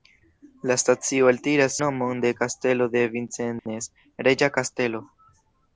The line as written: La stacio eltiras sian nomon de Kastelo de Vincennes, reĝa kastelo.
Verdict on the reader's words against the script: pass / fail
fail